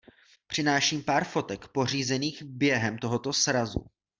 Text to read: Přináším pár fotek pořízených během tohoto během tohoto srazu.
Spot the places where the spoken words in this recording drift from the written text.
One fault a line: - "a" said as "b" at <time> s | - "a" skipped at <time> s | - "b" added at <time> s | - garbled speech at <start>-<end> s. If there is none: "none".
- "během tohoto" skipped at 3.3 s